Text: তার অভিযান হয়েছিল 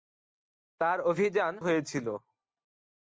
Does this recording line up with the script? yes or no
yes